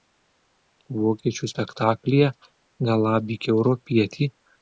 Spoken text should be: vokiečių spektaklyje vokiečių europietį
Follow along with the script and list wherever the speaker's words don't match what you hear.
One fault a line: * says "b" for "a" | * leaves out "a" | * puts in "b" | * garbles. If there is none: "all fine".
* says "galabyk" for "vokiečių"